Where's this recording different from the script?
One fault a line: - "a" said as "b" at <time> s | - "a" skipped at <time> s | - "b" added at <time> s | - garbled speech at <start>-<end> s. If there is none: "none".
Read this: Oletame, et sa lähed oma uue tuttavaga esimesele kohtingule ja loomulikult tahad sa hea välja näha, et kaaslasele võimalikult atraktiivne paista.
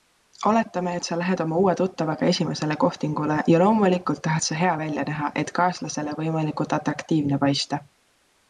none